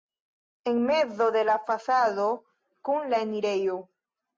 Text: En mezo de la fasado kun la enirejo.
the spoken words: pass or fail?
pass